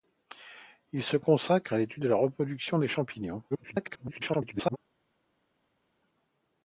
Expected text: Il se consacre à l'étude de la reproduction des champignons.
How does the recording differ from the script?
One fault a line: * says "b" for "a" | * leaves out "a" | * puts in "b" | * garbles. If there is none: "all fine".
* garbles